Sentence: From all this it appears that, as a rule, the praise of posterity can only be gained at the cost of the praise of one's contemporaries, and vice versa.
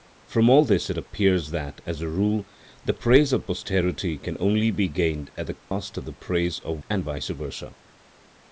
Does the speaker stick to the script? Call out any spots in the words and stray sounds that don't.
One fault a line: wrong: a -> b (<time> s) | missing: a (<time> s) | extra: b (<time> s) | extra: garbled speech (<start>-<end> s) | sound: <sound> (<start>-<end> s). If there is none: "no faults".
sound: dropout (5.6-5.7 s)
missing: one's contemporaries (6.8 s)